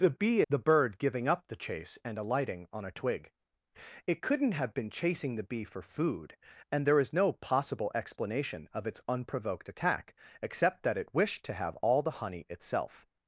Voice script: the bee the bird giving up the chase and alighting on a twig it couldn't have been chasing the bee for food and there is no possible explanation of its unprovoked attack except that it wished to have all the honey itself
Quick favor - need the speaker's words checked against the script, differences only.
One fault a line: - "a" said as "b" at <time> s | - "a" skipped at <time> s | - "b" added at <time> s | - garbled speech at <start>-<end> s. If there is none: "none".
none